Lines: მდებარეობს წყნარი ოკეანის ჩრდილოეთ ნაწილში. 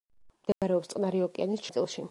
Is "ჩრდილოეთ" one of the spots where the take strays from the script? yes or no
yes